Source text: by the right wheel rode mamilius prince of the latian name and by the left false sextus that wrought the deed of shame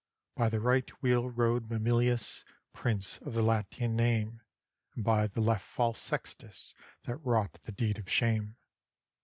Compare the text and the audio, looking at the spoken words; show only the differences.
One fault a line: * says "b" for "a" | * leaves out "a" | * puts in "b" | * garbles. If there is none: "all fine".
all fine